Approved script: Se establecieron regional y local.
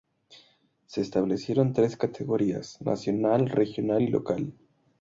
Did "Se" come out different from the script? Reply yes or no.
no